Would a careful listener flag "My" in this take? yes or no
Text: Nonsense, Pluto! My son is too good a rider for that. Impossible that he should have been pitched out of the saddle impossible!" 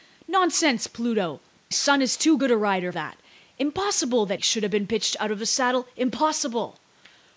yes